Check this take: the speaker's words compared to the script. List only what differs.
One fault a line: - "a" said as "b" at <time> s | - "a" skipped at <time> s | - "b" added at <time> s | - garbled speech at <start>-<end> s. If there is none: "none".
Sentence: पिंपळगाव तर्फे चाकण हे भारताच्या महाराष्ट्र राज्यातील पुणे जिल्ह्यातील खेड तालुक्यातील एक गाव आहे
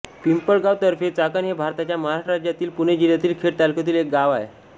none